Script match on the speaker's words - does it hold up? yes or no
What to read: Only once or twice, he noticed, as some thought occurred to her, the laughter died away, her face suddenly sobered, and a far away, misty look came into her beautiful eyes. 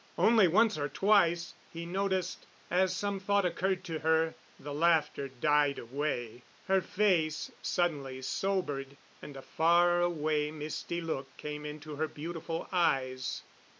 yes